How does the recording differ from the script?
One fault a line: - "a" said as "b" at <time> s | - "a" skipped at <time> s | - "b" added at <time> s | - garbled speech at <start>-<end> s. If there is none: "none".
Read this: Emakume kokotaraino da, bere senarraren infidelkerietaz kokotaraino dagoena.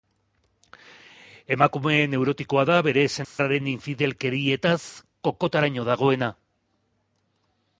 - "kokotaraino" said as "neurotikoa" at 2.1 s